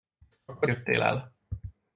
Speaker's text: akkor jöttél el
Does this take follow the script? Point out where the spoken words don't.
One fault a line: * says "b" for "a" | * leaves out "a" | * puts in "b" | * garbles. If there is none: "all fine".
all fine